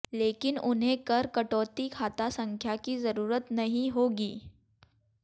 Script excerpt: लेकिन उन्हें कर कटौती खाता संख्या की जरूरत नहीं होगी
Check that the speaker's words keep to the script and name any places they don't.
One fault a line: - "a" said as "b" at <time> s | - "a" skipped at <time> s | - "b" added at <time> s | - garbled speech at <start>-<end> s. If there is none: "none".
none